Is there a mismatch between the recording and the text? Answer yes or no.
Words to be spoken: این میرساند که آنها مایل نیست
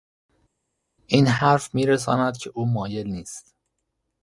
yes